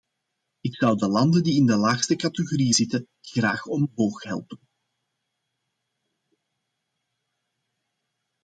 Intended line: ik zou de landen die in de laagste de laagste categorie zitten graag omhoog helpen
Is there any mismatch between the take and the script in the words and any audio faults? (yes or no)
yes